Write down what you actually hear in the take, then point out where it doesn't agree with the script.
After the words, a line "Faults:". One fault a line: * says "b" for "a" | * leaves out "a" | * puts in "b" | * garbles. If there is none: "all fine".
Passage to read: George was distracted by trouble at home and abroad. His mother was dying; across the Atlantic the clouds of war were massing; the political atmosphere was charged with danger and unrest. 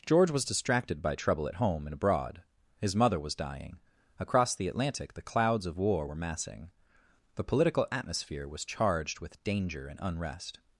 George was distracted by trouble at home and abroad. His mother was dying; across the Atlantic the clouds of war were massing; the political atmosphere was charged with danger and unrest.
Faults:
all fine